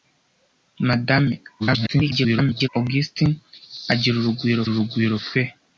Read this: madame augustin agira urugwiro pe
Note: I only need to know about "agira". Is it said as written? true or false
true